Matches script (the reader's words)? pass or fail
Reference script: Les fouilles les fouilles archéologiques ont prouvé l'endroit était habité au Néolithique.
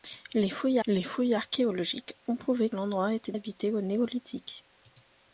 pass